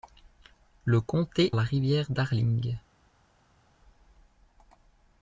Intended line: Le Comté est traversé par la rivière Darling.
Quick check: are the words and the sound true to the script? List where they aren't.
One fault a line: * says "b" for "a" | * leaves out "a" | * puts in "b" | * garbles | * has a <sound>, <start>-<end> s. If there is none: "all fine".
* leaves out "est traversé par"